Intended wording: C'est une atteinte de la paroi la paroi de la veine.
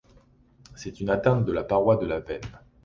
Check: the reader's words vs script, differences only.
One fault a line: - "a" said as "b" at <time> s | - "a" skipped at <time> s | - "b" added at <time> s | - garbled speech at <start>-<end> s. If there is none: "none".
- "la paroi" skipped at 2.0 s